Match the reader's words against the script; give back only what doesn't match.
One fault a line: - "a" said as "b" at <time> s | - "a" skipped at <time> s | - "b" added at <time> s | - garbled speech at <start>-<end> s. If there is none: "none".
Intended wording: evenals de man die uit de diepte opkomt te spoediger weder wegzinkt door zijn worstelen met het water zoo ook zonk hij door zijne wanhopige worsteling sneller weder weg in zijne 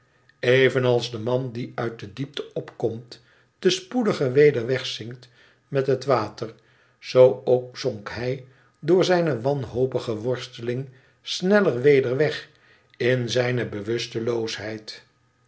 - "door zijn worstelen" skipped at 5.3 s